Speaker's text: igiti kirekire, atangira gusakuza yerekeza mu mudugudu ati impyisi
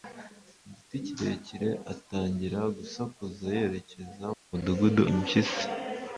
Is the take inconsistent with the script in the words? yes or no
yes